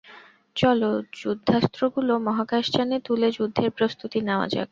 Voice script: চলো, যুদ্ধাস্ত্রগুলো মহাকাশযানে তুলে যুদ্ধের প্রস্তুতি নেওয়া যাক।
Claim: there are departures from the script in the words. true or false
false